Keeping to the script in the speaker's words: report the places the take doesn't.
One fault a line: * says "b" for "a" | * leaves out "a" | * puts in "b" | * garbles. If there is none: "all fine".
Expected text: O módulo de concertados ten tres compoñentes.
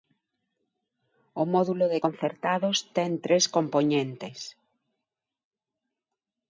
all fine